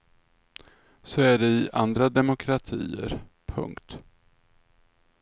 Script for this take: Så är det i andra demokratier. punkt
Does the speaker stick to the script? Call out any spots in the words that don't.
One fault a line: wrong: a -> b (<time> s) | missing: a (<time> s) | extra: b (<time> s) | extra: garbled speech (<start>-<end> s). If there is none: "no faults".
no faults